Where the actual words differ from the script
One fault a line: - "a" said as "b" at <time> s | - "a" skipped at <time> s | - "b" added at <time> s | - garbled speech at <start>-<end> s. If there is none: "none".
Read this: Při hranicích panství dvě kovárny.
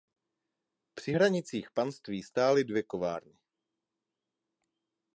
- "stály" added at 2.2 s